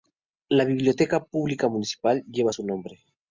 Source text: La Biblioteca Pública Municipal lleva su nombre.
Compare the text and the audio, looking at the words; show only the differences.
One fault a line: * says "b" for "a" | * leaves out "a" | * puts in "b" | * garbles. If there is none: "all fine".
all fine